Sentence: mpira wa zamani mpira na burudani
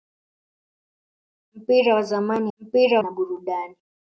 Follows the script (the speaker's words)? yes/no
yes